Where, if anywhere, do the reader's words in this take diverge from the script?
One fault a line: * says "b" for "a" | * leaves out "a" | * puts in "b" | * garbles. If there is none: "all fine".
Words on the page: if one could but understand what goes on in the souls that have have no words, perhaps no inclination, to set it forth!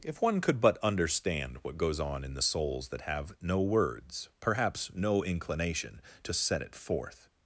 * leaves out "have"